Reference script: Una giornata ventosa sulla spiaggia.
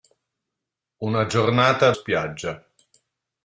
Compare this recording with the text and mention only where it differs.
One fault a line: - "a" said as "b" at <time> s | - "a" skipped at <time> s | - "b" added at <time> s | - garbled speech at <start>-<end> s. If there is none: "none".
- "ventosa sulla" skipped at 1.9 s